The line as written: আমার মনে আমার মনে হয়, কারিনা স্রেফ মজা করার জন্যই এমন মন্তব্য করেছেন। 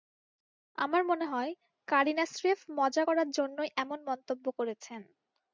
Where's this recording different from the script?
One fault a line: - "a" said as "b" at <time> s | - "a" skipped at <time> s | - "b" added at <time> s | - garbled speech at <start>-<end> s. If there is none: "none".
- "আমার মনে" skipped at 1.2 s